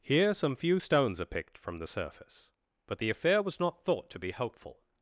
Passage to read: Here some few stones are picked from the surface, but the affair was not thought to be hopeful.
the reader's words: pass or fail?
pass